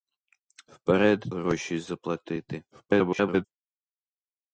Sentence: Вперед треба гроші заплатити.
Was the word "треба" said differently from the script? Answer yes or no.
yes